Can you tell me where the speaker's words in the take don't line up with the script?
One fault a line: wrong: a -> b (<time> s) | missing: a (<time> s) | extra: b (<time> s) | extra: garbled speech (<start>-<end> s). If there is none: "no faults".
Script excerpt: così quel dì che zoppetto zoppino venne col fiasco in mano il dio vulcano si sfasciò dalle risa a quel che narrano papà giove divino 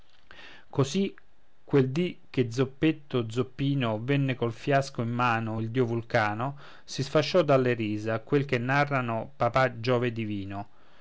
no faults